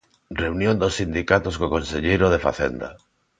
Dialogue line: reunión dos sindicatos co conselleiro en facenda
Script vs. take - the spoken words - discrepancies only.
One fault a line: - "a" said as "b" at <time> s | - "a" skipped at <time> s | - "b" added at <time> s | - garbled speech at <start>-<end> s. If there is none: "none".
- "en" said as "de" at 2.3 s